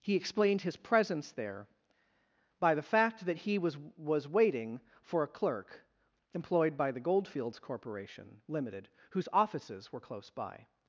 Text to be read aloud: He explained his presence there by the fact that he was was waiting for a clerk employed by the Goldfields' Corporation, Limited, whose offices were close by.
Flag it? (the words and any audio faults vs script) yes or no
no